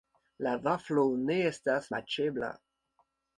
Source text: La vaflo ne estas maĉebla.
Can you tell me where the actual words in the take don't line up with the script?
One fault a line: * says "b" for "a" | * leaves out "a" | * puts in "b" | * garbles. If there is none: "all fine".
all fine